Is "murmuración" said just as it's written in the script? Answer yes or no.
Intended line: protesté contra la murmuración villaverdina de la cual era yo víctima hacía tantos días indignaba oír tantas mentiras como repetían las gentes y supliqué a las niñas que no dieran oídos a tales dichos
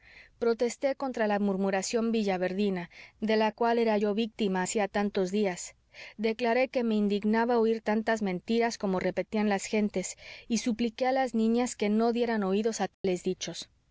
yes